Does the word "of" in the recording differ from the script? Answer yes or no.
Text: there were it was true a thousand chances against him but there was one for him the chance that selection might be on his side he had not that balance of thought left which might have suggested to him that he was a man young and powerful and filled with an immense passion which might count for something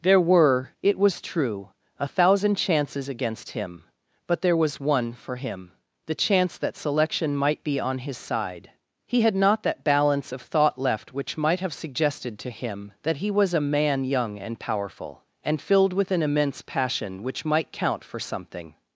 no